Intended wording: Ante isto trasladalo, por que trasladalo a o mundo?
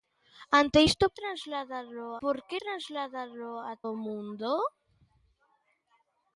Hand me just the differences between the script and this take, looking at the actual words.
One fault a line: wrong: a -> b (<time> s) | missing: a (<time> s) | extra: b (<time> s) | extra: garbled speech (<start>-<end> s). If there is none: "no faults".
no faults